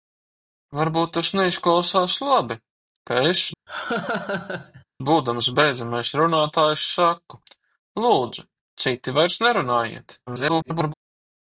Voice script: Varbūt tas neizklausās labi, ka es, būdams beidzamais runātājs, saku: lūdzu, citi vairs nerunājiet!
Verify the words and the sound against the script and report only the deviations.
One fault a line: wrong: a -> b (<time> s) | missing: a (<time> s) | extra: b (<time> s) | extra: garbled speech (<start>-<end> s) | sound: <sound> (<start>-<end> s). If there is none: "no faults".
sound: laugh (3.7-4.8 s)
extra: garbled speech (10.3-10.9 s)